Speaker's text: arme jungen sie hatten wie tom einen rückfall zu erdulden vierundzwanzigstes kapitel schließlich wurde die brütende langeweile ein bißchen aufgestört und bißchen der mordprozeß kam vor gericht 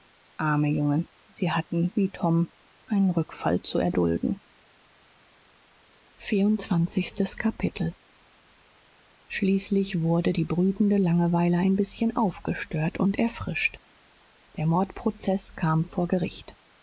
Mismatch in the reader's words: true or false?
true